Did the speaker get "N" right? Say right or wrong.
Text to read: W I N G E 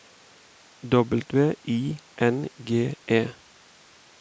right